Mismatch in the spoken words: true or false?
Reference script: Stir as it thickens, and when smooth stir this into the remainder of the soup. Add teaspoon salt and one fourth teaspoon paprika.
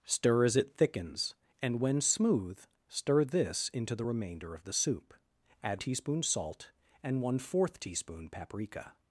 false